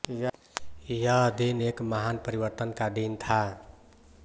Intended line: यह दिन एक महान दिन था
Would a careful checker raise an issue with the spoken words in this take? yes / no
yes